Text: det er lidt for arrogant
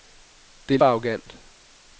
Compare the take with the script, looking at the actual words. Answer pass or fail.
fail